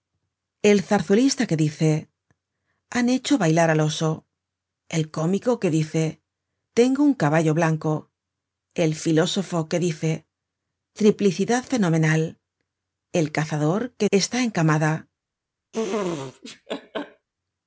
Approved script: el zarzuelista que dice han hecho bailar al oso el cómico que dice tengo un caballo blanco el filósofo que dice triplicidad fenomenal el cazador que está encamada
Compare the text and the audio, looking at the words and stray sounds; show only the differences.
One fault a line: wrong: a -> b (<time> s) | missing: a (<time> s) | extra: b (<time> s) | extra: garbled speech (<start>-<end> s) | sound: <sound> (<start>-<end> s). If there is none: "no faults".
sound: laugh (15.7-17.3 s)